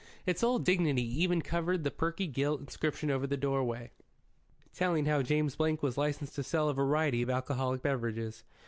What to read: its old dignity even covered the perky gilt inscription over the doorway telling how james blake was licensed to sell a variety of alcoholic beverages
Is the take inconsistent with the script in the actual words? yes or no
no